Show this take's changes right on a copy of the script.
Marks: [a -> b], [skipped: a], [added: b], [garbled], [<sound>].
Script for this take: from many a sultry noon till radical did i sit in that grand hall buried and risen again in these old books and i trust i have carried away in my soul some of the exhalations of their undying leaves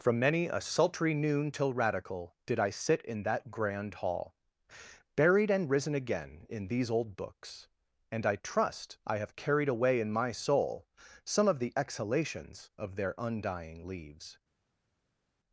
from many a sultry noon till radical did i sit in that grand hall buried and risen again in these old books and i trust i have carried away in my soul some of the exhalations of their undying leaves